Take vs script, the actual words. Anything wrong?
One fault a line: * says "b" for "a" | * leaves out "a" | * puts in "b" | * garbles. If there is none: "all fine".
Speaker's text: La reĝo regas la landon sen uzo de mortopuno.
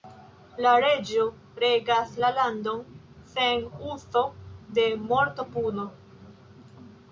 all fine